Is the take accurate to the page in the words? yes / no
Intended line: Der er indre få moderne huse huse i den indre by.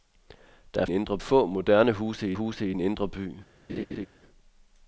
yes